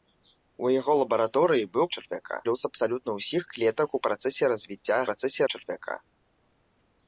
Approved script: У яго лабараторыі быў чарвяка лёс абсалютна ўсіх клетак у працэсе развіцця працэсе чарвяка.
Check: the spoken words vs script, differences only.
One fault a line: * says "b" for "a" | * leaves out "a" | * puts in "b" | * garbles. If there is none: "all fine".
all fine